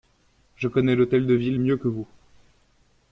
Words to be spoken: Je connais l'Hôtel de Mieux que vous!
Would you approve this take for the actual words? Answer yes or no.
no